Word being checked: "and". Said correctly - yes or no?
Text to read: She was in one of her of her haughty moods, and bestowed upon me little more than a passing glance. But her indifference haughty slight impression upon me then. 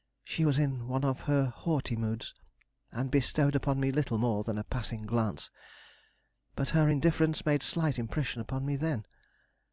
yes